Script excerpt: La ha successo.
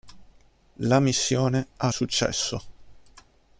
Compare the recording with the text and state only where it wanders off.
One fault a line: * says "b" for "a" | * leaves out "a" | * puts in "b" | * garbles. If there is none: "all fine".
* puts in "missione"